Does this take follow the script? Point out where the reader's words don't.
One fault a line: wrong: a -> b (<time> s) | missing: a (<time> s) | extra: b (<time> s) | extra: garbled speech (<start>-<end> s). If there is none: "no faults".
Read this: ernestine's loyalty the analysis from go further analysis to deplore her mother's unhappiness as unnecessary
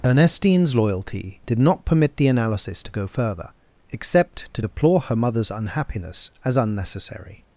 extra: did not permit (1.4 s)
wrong: from -> to (2.8 s)
wrong: analysis -> except (3.9 s)